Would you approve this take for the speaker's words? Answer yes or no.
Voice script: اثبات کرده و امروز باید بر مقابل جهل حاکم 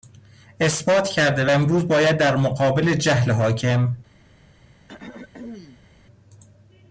no